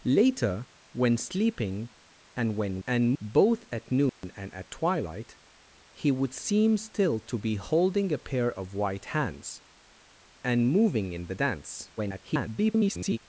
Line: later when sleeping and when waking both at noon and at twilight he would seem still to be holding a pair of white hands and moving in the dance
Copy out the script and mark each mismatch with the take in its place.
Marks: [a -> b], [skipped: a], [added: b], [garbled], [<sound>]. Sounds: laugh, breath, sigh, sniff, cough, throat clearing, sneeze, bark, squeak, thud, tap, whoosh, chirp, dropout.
later when sleeping and when [waking -> and] both at noon [dropout] and at twilight he would seem still to be holding a pair of white hands and moving in the dance [garbled]